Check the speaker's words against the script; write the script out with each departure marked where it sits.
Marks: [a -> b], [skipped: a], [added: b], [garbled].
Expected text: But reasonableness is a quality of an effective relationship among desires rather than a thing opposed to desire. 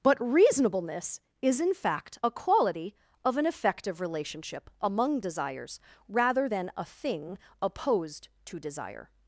But reasonableness is [added: in fact] a quality of an effective relationship among desires rather than a thing opposed to desire.